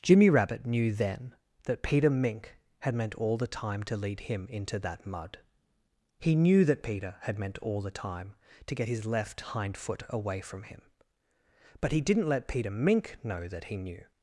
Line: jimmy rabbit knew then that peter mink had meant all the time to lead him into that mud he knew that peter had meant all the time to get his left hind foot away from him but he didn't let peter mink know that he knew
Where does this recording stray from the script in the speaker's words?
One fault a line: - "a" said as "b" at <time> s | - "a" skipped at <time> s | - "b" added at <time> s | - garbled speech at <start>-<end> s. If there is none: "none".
none